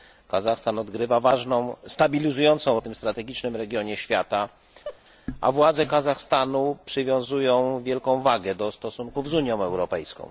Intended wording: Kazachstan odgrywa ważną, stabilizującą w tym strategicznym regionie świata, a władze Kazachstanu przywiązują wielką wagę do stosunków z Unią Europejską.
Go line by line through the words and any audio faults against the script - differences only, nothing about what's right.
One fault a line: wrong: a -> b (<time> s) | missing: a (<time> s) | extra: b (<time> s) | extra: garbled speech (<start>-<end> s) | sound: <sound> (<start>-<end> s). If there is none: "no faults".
sound: laugh (4.8-5.0 s)